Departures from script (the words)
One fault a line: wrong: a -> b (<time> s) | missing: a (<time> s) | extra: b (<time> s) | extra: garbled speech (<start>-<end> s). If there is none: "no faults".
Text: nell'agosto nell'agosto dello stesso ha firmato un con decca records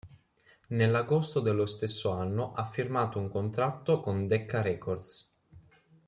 missing: nell'agosto (1.4 s)
extra: anno (2.1 s)
extra: contratto (3.3 s)